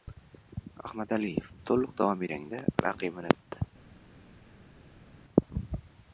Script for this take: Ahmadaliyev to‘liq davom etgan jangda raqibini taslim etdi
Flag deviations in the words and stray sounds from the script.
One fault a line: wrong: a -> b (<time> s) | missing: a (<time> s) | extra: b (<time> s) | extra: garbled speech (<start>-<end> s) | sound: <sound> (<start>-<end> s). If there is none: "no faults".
missing: etgan (2.2 s)
missing: taslim (3.4 s)